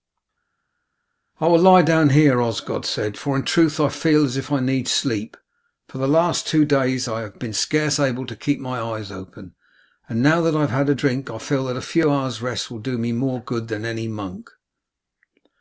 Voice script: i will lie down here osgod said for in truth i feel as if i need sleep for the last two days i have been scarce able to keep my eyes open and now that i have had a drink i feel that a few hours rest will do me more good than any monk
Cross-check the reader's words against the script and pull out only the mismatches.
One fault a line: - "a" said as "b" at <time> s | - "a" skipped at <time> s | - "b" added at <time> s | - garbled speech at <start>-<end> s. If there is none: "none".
none